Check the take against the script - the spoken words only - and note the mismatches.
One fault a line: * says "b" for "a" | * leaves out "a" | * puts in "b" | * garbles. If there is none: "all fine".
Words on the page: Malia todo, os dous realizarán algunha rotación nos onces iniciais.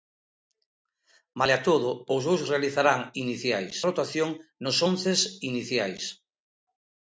* says "iniciais" for "algunha"